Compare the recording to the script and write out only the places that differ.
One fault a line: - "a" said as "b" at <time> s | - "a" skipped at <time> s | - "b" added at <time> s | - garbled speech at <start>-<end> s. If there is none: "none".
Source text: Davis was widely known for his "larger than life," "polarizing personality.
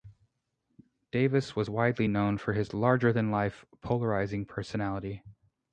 none